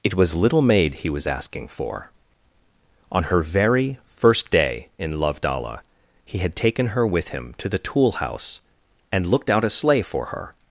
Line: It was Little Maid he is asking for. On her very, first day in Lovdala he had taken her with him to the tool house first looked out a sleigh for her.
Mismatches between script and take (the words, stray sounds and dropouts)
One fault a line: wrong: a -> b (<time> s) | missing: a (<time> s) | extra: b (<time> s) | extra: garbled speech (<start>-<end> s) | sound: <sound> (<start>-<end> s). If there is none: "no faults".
wrong: is -> was (1.1 s)
wrong: first -> and (9.1 s)